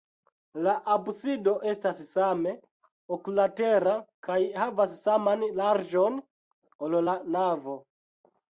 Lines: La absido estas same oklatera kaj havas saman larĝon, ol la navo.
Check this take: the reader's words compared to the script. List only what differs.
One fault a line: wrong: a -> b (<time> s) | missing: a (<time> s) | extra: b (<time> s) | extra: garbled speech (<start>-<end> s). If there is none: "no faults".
no faults